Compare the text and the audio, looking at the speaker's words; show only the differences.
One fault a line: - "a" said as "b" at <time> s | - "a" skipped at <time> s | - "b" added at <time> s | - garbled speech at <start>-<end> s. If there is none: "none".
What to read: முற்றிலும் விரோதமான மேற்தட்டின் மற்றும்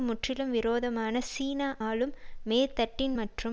- "சீன ஆளும்" added at 1.3 s